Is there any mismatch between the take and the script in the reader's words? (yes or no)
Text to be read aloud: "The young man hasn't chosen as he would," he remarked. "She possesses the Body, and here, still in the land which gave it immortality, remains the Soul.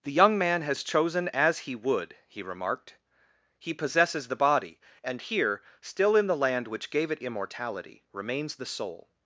yes